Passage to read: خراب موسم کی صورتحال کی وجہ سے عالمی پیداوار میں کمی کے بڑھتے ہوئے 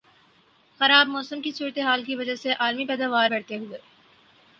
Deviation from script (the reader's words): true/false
true